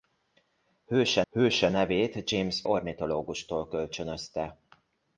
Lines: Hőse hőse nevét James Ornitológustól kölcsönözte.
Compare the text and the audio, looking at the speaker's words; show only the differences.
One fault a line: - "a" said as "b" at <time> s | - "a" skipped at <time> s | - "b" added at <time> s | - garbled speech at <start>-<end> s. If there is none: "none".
none